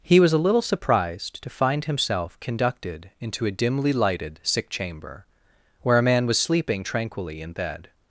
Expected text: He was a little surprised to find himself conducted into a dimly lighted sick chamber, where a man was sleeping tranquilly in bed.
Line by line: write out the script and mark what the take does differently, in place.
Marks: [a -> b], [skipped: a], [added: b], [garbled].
He was a little surprised to find himself conducted into a dimly lighted sick chamber, where a man was sleeping tranquilly in bed.